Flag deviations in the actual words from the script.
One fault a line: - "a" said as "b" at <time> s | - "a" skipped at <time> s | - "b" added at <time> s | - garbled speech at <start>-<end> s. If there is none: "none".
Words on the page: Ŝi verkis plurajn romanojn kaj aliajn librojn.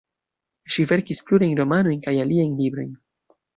none